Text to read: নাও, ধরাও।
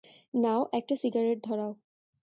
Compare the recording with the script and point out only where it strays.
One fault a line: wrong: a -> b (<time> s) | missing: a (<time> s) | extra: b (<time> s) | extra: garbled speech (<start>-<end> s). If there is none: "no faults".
extra: একটা সিগারেট (0.7 s)